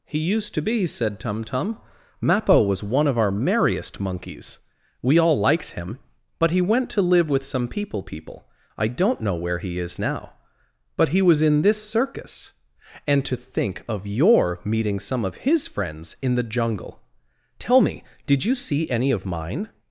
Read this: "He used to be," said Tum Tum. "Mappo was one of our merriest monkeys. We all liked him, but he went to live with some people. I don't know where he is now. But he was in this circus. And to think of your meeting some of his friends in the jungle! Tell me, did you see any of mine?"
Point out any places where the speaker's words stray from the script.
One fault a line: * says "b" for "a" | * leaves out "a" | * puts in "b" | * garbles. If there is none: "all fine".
* puts in "people"